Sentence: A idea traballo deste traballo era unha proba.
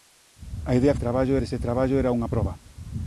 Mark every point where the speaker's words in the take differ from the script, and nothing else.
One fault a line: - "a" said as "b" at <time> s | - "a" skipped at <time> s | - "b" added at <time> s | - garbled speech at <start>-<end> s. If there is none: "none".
none